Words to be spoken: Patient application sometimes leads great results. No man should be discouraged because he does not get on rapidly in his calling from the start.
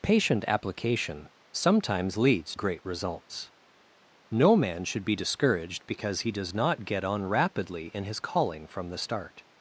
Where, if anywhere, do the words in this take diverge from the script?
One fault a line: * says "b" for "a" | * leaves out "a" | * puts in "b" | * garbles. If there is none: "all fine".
all fine